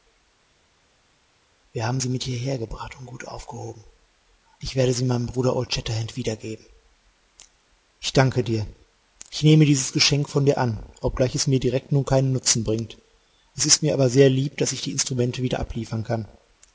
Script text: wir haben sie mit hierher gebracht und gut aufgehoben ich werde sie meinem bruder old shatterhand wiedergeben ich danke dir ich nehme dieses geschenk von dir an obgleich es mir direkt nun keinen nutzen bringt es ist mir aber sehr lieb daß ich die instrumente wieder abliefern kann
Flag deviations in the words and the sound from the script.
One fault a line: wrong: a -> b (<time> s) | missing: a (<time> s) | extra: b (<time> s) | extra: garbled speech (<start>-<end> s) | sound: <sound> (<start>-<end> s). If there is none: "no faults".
no faults